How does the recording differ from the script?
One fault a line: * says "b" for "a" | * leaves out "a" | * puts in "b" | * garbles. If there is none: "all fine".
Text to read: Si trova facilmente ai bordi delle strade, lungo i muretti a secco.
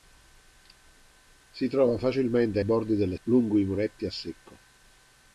* leaves out "ai"
* leaves out "strade"